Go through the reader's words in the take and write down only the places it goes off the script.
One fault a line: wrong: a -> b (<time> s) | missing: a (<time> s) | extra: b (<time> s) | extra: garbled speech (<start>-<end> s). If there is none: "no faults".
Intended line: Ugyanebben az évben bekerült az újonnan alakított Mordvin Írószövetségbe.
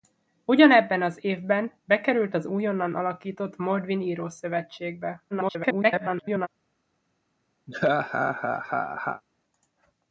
extra: garbled speech (5.3-6.5 s)